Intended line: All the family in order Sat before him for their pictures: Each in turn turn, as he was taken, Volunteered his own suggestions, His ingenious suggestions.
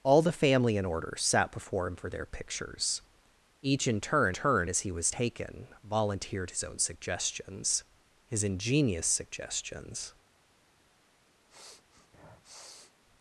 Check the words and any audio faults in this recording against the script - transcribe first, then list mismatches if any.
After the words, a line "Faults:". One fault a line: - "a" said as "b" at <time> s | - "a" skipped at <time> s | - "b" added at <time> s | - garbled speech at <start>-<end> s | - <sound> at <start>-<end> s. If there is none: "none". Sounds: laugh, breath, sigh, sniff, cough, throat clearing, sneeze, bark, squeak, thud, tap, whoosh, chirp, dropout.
All the family in order Sat before him for their pictures: Each in turn turn, as he was taken, Volunteered his own suggestions, His ingenious suggestions.
Faults:
- sniff at 11.5-12.9 s